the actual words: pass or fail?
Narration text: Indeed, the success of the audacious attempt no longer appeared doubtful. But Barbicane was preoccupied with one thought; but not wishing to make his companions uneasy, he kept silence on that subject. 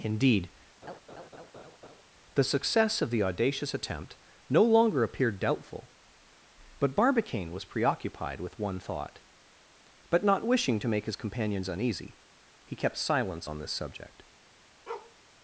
fail